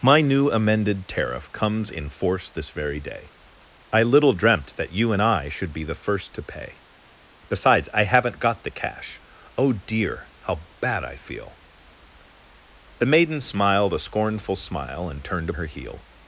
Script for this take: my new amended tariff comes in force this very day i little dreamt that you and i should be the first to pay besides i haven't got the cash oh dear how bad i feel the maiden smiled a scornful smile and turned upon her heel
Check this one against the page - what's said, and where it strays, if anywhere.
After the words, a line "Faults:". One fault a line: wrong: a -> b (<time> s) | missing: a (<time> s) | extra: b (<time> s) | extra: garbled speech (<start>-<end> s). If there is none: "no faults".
my new amended tariff comes in force this very day i little dreamt that you and i should be the first to pay besides i haven't got the cash oh dear how bad i feel the maiden smiled a scornful smile and turned her heel
Faults:
missing: upon (15.5 s)